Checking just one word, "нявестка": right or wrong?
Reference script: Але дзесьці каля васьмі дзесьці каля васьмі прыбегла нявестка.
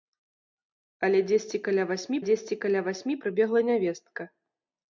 right